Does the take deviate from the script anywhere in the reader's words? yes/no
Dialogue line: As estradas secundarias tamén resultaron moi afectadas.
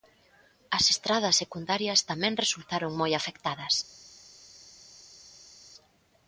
no